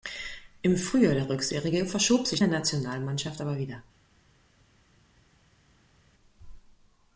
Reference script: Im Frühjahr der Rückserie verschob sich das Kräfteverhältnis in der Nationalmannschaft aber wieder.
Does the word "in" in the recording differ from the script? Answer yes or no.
yes